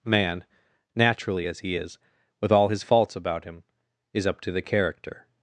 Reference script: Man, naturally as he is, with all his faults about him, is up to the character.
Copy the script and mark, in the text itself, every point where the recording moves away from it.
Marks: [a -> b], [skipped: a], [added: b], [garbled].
Man, naturally as he is, with all his faults about him, is up to the character.